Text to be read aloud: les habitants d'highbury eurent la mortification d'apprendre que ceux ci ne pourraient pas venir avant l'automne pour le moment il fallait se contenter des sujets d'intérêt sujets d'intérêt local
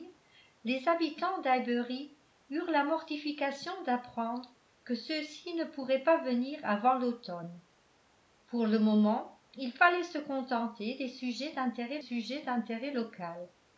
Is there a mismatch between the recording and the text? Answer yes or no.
no